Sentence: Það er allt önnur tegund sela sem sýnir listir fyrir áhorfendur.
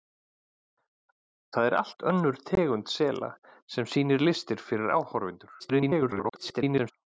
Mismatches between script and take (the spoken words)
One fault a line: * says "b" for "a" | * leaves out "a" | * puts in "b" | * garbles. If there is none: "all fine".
* garbles